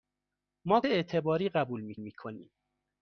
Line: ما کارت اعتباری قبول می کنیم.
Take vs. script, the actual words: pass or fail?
fail